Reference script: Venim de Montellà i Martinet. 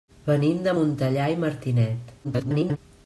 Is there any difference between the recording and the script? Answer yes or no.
yes